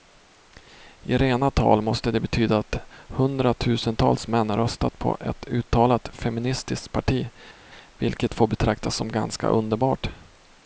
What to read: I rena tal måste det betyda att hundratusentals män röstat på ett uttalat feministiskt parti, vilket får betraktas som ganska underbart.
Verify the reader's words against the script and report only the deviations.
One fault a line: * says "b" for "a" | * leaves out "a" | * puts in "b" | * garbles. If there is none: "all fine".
all fine